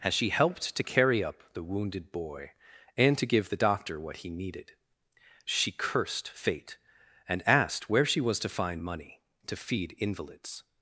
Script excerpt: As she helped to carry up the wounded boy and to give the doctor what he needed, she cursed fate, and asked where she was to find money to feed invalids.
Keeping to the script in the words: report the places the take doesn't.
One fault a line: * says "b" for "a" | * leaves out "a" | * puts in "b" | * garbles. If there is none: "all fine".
all fine